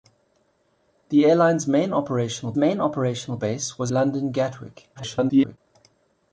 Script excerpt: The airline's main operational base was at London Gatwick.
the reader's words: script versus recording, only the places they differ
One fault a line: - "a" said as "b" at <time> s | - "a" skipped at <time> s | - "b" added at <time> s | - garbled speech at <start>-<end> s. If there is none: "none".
- "main operational" added at 2.6 s
- "at" skipped at 3.9 s
- garbled speech at 4.9-5.6 s